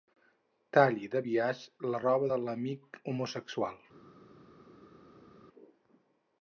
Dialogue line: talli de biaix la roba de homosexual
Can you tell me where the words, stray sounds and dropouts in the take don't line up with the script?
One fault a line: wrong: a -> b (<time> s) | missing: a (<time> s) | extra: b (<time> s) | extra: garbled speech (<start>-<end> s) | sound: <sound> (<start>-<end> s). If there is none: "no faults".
extra: l'amic (2.5 s)